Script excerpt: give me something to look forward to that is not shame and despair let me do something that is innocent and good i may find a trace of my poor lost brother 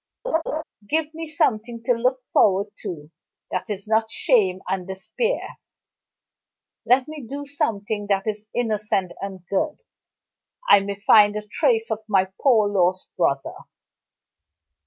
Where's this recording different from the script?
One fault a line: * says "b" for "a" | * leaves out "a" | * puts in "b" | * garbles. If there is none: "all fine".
all fine